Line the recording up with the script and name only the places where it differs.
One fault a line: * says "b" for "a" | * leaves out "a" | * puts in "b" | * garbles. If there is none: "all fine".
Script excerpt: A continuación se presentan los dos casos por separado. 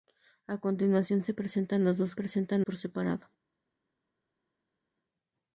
* says "presentan" for "casos"